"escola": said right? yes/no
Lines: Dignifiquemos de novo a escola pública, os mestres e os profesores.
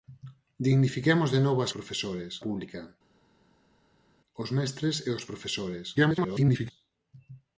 no